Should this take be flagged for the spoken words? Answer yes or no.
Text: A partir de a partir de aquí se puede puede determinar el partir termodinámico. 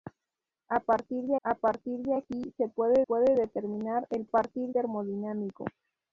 no